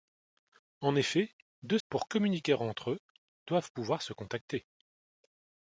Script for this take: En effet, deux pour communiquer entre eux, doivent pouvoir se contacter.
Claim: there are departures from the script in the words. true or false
false